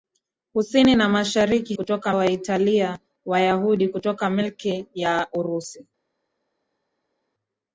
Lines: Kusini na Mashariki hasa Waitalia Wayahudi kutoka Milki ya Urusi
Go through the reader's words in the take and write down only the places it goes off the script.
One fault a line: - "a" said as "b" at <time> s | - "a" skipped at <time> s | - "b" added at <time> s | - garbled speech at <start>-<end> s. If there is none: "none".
- "hasa" said as "kutoka" at 1.7 s